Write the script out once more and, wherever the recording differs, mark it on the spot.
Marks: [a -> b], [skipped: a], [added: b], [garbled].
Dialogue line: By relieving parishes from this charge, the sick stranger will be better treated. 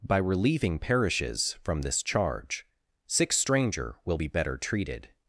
By relieving parishes from this charge, [skipped: the] sick stranger will be better treated.